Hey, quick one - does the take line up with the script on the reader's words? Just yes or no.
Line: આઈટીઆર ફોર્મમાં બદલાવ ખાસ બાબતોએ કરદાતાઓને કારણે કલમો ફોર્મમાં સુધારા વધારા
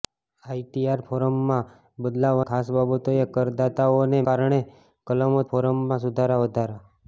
yes